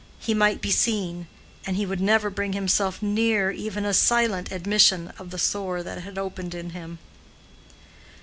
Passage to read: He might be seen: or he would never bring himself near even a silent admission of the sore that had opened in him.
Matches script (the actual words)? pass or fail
fail